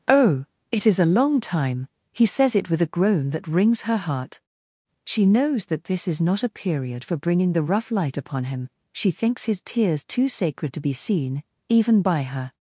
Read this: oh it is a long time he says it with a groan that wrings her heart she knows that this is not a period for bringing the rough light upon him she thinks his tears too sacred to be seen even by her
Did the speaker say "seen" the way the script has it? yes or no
yes